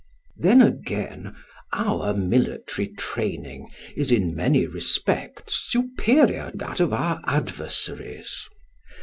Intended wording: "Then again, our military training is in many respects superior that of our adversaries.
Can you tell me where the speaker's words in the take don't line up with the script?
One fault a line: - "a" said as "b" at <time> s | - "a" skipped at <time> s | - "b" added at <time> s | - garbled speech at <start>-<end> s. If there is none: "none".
none